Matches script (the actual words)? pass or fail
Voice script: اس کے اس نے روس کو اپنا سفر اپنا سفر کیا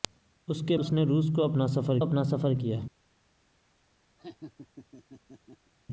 pass